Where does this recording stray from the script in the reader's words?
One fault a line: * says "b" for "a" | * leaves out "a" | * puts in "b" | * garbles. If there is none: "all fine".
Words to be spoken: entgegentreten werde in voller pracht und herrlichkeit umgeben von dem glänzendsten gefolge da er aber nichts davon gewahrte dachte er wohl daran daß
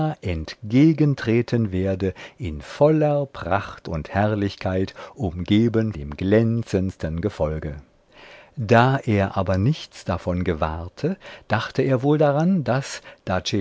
* leaves out "von"